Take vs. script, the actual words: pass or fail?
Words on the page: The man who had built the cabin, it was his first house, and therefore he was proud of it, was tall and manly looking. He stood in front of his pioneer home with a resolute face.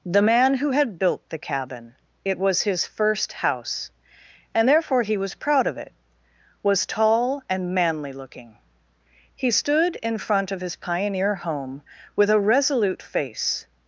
pass